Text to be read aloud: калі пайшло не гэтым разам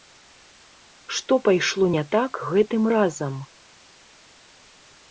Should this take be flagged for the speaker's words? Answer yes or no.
yes